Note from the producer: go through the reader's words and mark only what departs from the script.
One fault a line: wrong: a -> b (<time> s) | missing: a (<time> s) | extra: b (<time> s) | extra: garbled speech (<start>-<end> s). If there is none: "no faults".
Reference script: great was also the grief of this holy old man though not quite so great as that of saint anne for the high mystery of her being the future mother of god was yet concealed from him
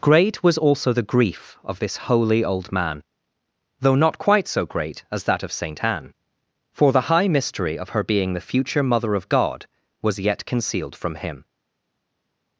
no faults